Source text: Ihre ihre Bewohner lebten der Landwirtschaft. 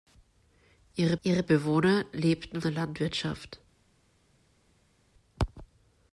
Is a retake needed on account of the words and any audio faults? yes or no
no